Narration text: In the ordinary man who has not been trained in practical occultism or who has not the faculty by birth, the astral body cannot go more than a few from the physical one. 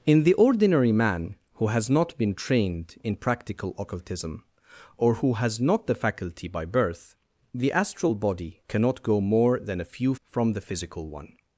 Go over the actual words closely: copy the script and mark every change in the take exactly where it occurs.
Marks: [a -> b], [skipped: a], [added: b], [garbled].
In the ordinary man who has not been trained in practical occultism or who has not the faculty by birth, the astral body cannot go more than a few from the physical one.